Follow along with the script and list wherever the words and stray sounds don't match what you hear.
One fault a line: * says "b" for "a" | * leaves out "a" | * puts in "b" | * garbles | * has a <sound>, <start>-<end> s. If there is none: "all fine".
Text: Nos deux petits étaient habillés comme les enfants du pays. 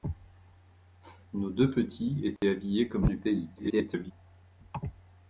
* has a dropout, 2.4-2.4 s
* leaves out "les enfants"
* garbles